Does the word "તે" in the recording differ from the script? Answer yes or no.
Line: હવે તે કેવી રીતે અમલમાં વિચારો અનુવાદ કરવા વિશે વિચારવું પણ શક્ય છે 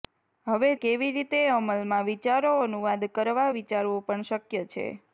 yes